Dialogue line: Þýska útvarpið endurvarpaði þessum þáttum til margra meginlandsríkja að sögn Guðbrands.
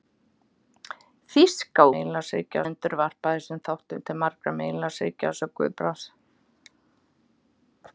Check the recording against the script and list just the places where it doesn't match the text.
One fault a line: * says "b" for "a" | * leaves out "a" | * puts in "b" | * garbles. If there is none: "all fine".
* says "meginlandsríkja" for "útvarpið"